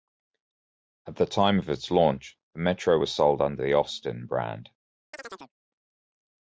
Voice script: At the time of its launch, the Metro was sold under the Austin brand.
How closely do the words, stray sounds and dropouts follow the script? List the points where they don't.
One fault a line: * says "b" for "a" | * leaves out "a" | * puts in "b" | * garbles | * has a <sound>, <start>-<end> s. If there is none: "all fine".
* has a chirp, 5.1-5.5 s